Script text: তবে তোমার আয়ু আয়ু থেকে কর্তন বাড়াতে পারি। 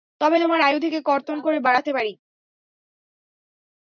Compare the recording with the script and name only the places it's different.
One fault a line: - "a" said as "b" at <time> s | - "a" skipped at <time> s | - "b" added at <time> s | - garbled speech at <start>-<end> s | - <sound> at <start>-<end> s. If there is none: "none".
- "আয়ু" skipped at 0.8 s
- "করে" added at 1.4 s